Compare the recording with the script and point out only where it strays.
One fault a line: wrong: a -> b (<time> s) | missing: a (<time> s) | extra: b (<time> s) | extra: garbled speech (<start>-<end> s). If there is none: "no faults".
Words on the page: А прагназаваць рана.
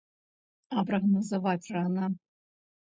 no faults